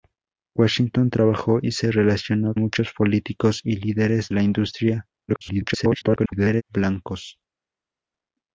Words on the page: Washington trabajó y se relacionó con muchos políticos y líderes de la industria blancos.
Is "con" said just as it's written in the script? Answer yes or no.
no